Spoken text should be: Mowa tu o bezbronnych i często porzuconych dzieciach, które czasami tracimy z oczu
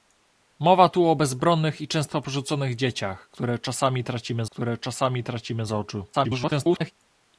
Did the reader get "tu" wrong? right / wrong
right